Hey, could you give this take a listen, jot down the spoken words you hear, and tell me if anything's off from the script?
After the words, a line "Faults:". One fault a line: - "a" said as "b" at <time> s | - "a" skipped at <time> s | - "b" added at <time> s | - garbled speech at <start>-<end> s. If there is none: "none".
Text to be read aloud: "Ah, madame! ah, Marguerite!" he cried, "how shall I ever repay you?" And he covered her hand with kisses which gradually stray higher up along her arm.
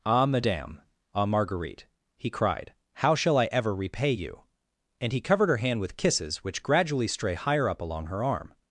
"Ah, madame! ah, Marguerite!" he cried, "how shall I ever repay you?" And he covered her hand with kisses which gradually stray higher up along her arm.
Faults:
none